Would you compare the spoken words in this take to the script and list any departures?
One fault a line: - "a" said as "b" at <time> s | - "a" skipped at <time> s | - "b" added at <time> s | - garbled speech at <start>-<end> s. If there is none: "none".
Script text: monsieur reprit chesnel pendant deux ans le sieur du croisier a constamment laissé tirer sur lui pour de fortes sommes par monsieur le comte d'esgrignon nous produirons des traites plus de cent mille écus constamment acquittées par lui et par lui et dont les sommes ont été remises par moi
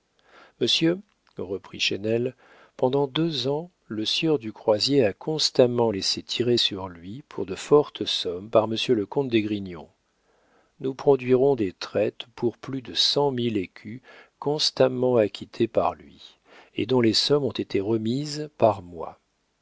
- "pour" added at 12.4 s
- "par lui et" skipped at 16.9 s